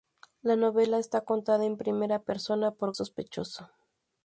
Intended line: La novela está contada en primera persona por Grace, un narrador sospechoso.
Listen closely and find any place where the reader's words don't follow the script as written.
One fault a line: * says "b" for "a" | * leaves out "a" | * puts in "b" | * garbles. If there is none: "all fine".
* leaves out "Grace un narrador"